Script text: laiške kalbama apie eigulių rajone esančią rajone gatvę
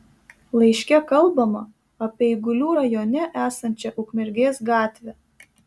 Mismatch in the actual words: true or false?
true